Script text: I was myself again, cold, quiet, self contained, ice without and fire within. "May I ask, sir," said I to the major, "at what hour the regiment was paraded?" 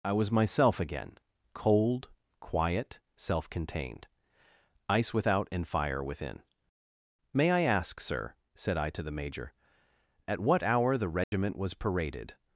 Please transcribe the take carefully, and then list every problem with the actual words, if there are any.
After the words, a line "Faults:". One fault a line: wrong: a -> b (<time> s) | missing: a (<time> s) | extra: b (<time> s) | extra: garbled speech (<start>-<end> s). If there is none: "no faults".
I was myself again, cold, quiet, self contained, ice without and fire within. "May I ask, sir," said I to the major, "at what hour the regiment was paraded?"
Faults:
no faults